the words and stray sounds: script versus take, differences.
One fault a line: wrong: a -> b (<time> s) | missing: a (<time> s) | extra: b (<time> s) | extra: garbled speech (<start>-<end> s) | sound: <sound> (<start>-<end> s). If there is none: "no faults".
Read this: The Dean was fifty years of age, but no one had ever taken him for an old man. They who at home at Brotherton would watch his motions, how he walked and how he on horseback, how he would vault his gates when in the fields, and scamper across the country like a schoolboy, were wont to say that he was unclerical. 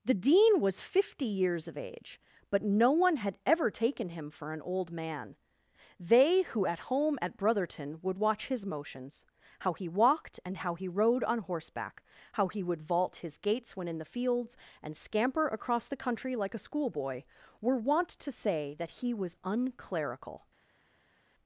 extra: rode (10.9 s)